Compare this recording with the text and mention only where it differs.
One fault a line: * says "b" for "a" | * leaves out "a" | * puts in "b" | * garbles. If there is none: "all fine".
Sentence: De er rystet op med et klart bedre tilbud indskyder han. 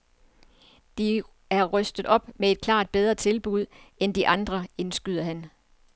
* puts in "end de andre"